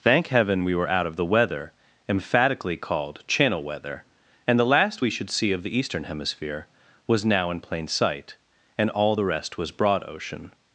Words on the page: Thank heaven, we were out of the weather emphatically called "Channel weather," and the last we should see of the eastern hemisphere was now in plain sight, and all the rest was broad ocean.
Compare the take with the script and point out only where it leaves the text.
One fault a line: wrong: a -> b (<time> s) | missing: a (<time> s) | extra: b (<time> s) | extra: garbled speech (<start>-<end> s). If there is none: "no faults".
no faults